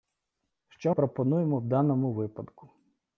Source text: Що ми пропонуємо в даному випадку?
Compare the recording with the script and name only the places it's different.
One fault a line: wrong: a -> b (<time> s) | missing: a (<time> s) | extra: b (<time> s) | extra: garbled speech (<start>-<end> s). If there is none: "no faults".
missing: ми (0.9 s)